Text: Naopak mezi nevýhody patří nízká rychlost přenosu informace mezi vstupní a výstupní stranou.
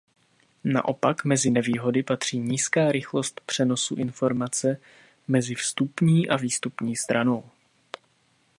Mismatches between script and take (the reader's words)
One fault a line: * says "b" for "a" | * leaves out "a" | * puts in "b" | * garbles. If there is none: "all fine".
all fine